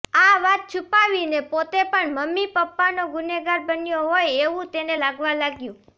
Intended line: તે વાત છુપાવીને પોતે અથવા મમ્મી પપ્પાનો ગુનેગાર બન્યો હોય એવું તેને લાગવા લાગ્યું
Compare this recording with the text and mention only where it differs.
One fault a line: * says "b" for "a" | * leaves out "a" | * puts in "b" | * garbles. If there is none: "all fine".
* says "આ" for "તે"
* says "પણ" for "અથવા"